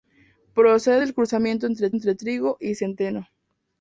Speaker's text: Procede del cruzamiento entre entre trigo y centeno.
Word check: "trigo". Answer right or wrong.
right